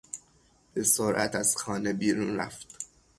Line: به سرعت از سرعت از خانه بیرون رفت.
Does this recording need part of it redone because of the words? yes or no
yes